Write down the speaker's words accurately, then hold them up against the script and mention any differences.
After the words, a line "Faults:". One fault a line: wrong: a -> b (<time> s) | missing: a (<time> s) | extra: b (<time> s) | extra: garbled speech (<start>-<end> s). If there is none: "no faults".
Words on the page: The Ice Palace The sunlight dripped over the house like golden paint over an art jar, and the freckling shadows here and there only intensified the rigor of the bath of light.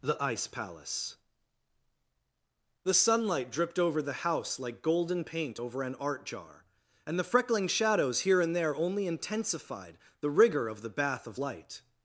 The Ice Palace The sunlight dripped over the house like golden paint over an art jar, and the freckling shadows here and there only intensified the rigor of the bath of light.
Faults:
no faults